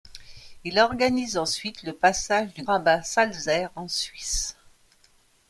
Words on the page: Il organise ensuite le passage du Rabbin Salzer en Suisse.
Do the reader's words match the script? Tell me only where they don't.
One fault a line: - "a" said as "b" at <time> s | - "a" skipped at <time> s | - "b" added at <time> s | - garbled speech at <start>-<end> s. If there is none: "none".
none